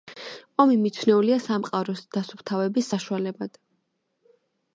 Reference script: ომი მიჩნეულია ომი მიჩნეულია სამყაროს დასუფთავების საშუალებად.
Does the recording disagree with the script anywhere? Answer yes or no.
yes